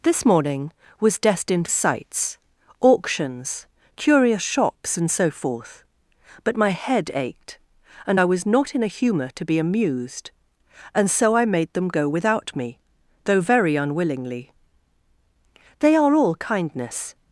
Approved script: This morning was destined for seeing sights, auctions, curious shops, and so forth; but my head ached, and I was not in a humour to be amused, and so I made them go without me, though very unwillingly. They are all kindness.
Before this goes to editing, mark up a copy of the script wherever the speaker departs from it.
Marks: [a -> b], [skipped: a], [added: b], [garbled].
This morning was destined [skipped: for seeing] sights, auctions, curious shops, and so forth; but my head ached, and I was not in a humour to be amused, and so I made them go without me, though very unwillingly. They are all kindness.